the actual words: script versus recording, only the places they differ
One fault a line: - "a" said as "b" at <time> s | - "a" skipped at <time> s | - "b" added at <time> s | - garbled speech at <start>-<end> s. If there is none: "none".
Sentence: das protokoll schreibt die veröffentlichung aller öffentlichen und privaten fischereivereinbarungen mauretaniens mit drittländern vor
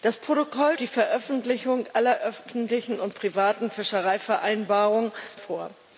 - "schreibt" skipped at 0.8 s
- "mauretaniens mit drittländern" skipped at 5.1 s